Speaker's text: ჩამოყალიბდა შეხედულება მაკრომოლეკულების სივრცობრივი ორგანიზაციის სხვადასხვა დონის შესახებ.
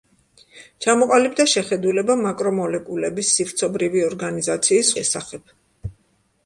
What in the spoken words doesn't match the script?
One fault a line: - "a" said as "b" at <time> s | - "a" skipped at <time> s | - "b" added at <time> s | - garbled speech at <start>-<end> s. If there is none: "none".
- "სხვადასხვა დონის" skipped at 4.9 s